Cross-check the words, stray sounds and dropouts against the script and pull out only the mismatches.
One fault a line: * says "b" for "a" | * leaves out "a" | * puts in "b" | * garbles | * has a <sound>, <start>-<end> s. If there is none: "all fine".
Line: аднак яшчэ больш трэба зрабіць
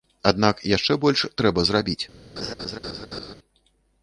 * has a laugh, 2.4-3.3 s